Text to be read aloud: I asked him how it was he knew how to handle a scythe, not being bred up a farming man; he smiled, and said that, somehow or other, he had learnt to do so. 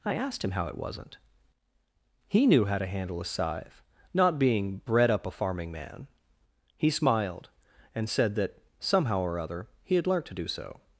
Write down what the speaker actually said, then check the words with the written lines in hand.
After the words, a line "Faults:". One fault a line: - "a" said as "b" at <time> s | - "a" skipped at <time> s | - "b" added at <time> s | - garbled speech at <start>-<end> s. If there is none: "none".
I asked him how it wasn't he knew how to handle a scythe, not being bred up a farming man; he smiled, and said that, somehow or other, he had learnt to do so.
Faults:
- "was" said as "wasn't" at 0.8 s